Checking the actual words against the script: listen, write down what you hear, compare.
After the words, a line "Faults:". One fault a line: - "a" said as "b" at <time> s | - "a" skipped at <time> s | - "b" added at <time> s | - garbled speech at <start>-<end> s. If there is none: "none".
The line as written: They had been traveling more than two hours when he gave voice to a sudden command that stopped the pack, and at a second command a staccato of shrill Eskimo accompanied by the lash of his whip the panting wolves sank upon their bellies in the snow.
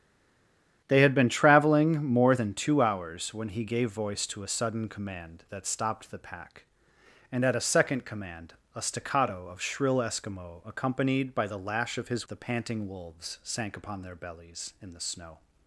They had been traveling more than two hours when he gave voice to a sudden command that stopped the pack, and at a second command a staccato of shrill Eskimo accompanied by the lash of his the panting wolves sank upon their bellies in the snow.
Faults:
- "whip" skipped at 12.3 s